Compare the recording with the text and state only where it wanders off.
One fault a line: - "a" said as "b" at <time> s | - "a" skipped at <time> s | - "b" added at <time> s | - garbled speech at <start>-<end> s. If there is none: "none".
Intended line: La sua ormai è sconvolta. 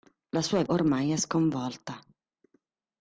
none